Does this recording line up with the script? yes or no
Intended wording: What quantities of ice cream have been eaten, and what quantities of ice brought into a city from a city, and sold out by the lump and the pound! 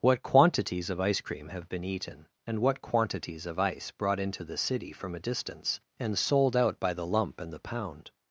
no